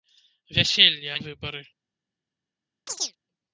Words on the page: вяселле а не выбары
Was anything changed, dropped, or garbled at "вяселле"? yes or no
no